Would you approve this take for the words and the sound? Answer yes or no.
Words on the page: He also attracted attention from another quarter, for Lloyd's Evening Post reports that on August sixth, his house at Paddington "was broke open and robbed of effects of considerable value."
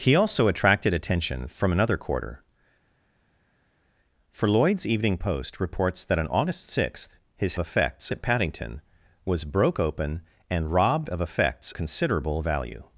no